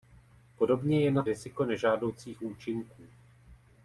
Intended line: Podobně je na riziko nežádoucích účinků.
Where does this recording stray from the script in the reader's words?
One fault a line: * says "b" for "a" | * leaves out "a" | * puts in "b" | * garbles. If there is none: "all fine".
all fine